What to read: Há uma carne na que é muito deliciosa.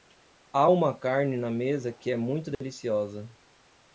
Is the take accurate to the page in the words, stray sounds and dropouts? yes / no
no